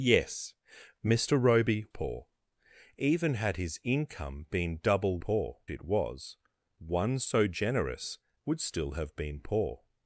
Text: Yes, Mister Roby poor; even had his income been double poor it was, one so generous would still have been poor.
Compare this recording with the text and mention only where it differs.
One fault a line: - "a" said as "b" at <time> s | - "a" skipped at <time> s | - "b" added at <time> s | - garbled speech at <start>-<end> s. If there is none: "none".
none